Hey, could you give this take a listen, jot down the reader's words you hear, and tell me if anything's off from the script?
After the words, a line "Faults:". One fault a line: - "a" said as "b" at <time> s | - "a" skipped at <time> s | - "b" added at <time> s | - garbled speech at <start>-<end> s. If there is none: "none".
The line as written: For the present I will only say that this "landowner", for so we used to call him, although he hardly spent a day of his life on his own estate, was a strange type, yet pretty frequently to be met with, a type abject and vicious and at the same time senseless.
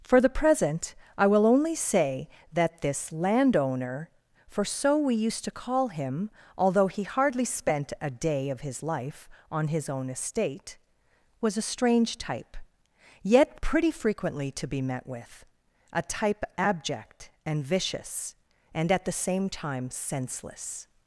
For the present I will only say that this "landowner", for so we used to call him, although he hardly spent a day of his life on his own estate, was a strange type, yet pretty frequently to be met with, a type abject and vicious and at the same time senseless.
Faults:
none